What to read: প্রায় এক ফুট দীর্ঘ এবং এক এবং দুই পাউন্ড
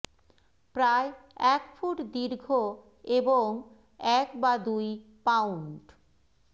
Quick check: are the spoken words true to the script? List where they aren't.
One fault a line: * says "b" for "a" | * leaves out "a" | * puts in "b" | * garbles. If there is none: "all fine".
* says "বা" for "এবং"